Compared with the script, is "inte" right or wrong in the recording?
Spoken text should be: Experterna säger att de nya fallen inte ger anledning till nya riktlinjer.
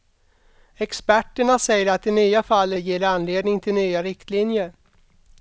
wrong